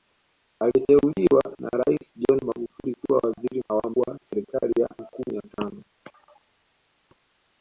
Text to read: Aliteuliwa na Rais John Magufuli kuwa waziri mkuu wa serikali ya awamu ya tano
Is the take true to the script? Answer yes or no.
no